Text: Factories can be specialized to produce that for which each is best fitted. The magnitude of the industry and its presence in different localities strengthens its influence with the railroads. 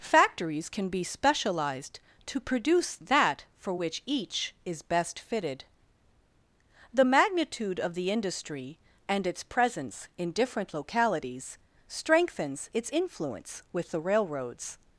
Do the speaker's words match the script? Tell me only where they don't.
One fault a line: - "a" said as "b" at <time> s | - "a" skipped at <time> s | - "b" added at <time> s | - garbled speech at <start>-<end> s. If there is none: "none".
none